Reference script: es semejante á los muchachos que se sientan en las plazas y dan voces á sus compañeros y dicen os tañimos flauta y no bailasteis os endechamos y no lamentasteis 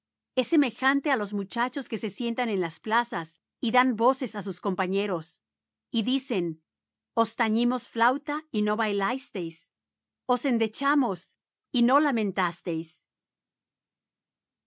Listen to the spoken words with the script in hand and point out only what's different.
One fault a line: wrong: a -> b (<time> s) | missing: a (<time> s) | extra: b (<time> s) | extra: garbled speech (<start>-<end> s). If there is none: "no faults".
no faults